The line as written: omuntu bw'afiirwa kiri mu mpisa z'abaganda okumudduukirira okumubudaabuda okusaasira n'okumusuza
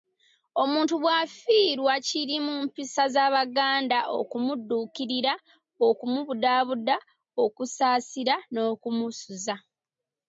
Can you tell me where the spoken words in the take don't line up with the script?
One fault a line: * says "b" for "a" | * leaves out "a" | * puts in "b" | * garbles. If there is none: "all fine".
all fine